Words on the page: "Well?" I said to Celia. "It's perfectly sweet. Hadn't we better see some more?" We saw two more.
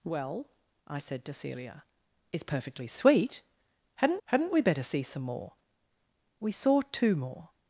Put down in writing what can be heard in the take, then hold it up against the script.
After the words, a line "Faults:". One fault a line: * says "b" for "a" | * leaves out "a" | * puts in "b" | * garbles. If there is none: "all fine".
"Well?" I said to Celia. "It's perfectly sweet. Hadn't hadn't we better see some more?" We saw two more.
Faults:
* puts in "hadn't"